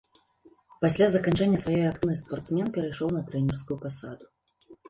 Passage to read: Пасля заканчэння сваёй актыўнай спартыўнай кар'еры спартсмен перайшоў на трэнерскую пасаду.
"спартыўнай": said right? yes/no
no